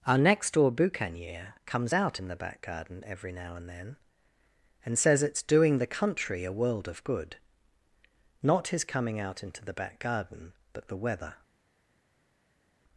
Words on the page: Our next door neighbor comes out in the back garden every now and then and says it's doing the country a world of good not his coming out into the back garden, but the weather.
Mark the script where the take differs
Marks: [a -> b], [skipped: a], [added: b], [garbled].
Our next door [neighbor -> boucanier] comes out in the back garden every now and then and says it's doing the country a world of good not his coming out into the back garden, but the weather.